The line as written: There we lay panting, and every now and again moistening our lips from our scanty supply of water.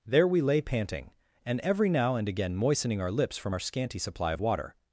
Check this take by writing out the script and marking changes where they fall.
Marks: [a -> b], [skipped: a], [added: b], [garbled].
There we lay panting, and every now and again moistening our lips from our scanty supply of water.